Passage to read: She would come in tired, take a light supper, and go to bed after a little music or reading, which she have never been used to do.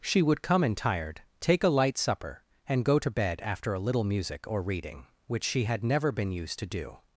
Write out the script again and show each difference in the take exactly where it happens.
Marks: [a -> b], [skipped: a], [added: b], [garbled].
She would come in tired, take a light supper, and go to bed after a little music or reading, which she [have -> had] never been used to do.